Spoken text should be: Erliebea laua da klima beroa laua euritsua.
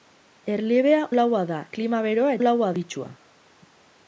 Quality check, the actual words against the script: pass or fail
pass